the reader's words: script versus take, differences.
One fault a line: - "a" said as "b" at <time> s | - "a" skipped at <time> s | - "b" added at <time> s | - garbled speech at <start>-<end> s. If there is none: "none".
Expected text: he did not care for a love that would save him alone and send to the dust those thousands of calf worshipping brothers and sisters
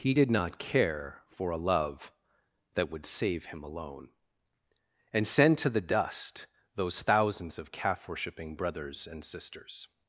none